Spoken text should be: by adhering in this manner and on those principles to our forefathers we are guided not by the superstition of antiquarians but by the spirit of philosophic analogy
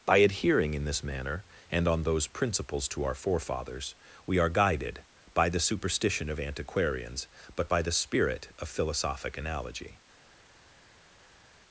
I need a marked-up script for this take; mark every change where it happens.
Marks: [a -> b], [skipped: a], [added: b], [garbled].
by adhering in this manner and on those principles to our forefathers we are guided [skipped: not] by the superstition of antiquarians but by the spirit of philosophic analogy